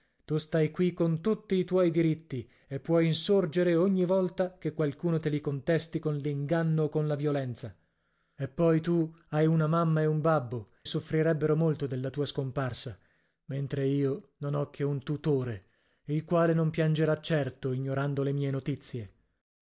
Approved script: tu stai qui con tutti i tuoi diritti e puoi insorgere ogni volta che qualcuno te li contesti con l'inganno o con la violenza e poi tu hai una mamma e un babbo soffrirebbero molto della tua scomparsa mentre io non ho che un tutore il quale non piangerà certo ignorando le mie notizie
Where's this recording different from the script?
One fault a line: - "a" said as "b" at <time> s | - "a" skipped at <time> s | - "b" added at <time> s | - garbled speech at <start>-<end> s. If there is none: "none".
none